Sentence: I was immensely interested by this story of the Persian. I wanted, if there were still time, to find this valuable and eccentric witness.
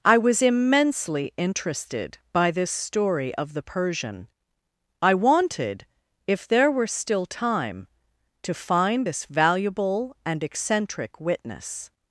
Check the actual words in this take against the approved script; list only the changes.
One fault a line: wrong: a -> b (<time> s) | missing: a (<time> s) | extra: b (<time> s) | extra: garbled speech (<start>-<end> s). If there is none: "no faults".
no faults